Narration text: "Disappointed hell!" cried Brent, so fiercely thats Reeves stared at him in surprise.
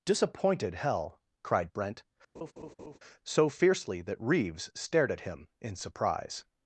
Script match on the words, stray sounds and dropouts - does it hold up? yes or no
no